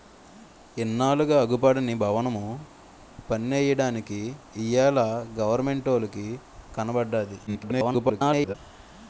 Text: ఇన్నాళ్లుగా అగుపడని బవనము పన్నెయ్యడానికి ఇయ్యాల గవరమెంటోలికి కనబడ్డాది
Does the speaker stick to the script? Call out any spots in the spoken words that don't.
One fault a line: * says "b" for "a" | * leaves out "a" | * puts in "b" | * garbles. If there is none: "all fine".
* garbles